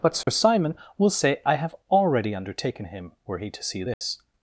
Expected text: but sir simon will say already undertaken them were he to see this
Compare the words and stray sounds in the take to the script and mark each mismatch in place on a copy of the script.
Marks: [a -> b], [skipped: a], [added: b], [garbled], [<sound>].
but sir [dropout] simon will say [added: i have] already undertaken [them -> him] were he to see this [dropout]